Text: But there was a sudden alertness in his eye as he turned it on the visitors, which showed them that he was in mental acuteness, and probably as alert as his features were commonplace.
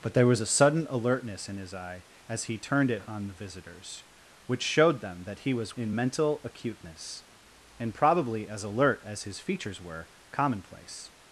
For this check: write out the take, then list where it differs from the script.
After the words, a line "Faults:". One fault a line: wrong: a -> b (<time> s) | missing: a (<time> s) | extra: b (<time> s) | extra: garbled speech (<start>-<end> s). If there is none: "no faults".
But there was a sudden alertness in his eye as he turned it on the visitors, which showed them that he was in mental acuteness, and probably as alert as his features were commonplace.
Faults:
no faults